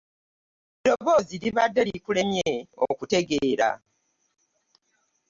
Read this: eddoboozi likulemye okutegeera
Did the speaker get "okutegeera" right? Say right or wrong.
right